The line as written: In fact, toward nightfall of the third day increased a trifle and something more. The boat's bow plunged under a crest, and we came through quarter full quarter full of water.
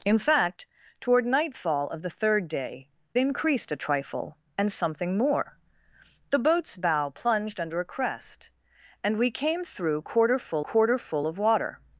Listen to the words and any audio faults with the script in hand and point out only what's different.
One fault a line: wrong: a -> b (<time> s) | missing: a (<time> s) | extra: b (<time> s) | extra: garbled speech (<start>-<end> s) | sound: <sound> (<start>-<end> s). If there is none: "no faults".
no faults